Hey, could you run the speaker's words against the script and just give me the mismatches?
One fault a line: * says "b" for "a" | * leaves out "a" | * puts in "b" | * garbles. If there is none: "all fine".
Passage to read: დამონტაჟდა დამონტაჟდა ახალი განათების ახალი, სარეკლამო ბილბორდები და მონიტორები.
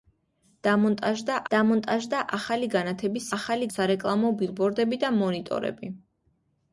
all fine